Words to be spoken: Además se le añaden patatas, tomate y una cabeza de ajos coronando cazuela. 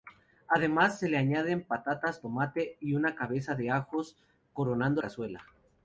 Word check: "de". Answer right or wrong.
right